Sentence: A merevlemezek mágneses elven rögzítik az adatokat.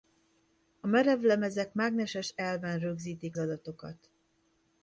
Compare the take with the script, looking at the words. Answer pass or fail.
fail